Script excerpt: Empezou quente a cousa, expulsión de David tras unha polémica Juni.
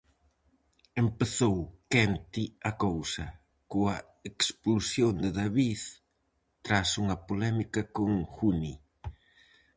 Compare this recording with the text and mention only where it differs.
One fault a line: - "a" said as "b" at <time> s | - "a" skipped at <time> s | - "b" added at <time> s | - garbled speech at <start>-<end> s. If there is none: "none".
- "coa" added at 3.7 s
- "con" added at 8.0 s